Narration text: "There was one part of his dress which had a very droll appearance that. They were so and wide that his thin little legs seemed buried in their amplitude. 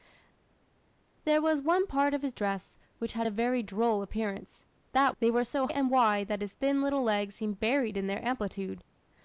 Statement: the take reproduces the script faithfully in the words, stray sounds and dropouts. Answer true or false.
true